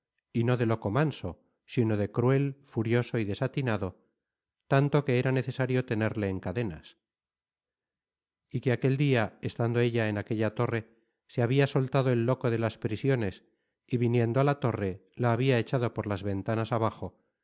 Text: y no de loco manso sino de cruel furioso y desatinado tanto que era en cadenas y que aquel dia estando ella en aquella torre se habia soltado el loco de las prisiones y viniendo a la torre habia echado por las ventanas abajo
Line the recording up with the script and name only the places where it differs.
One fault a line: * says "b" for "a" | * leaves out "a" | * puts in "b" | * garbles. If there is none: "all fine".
* puts in "necesario tenerle"
* puts in "la"